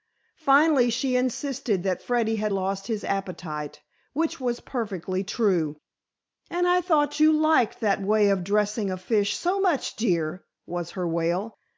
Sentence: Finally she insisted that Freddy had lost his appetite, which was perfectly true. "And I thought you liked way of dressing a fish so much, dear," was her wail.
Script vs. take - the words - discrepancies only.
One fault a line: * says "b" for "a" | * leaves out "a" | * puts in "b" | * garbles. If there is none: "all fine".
* puts in "that"